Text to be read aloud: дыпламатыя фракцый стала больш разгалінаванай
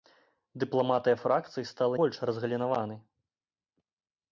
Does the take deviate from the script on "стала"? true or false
false